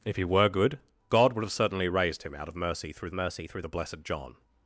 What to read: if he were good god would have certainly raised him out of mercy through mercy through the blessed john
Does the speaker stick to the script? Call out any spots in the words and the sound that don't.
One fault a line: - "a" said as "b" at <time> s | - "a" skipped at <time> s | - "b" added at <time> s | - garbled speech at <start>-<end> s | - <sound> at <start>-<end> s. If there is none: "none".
none